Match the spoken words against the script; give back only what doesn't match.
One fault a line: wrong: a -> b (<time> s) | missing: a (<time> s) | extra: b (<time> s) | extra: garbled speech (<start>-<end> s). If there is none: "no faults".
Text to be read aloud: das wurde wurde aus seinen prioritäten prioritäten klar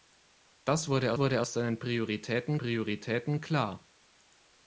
no faults